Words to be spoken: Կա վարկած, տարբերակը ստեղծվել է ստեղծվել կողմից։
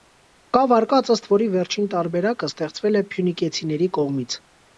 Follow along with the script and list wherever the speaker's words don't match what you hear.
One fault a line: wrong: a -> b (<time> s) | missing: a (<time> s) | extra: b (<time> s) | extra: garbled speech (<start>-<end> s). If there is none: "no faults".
extra: ըստ որի վերջին (1.1 s)
wrong: ստեղծվել -> փյունիկեցիների (3.1 s)